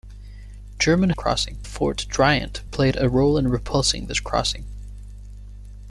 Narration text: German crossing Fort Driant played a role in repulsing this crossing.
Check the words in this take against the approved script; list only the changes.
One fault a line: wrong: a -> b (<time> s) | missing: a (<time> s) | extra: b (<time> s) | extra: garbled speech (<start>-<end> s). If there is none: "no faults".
no faults